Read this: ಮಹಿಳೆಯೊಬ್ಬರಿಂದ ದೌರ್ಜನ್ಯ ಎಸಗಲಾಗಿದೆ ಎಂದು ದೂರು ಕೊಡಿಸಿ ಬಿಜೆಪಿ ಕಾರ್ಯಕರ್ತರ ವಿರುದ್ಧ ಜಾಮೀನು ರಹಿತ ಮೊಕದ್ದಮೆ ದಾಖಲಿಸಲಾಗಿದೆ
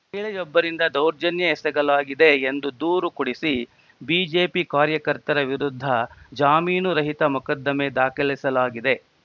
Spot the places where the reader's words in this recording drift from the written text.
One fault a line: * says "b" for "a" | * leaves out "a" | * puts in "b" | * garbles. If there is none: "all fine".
all fine